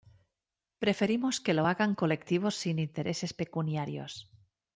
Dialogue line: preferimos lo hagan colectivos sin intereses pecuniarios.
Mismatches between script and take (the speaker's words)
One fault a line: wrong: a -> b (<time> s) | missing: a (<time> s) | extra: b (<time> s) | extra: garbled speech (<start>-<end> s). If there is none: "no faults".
extra: que (1.4 s)